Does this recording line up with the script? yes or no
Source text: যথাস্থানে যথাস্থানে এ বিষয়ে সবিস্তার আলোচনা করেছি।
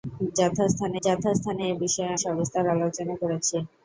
yes